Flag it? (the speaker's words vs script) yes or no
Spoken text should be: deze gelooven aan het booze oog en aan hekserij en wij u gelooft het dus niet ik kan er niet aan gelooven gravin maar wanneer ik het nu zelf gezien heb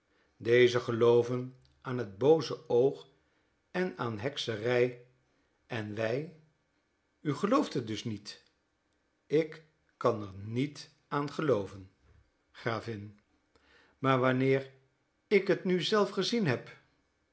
no